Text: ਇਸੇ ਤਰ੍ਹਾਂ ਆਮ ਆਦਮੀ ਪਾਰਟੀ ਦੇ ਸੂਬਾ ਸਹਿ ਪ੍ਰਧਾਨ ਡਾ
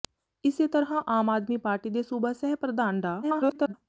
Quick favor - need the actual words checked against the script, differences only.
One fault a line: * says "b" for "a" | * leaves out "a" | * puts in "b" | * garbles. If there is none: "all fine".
* garbles